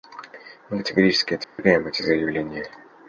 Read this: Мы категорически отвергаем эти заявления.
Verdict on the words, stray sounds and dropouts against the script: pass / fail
fail